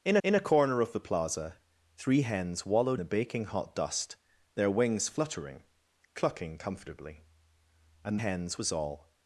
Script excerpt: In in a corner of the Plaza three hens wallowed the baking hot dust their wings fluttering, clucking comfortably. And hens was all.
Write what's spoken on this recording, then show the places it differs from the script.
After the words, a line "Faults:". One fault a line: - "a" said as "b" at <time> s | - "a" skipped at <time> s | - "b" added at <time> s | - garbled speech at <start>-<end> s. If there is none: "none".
In in a corner of the Plaza three hens wallowed the baking hot dust their wings fluttering, clucking comfortably. And hens was all.
Faults:
none